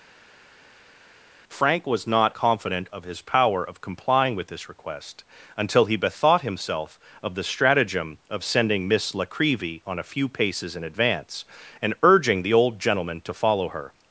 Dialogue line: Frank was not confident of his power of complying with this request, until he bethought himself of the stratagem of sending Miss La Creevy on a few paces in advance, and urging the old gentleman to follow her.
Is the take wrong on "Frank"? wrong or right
right